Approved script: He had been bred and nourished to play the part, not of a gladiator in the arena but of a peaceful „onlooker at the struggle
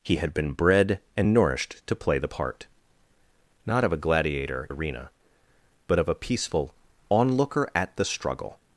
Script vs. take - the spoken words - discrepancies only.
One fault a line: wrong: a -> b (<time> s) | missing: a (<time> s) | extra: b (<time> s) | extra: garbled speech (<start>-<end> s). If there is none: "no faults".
missing: in the (4.7 s)